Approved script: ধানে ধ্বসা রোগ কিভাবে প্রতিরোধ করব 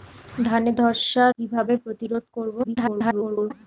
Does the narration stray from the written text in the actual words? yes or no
yes